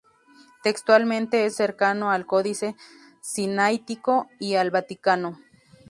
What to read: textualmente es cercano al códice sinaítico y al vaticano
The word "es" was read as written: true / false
true